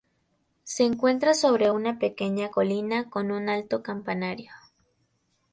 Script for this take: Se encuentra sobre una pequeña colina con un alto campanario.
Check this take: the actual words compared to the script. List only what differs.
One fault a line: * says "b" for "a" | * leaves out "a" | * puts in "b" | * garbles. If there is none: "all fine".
all fine